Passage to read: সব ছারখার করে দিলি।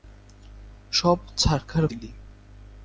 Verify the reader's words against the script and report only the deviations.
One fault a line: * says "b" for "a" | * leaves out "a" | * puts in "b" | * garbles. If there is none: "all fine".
* leaves out "করে"